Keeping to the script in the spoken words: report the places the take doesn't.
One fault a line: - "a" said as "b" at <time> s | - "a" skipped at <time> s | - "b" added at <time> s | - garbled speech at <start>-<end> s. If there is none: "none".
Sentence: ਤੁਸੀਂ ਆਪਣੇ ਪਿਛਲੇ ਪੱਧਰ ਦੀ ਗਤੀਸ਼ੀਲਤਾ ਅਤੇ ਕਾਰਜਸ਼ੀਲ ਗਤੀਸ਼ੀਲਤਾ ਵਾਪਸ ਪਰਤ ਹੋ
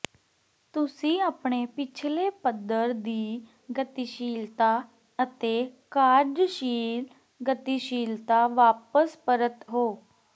none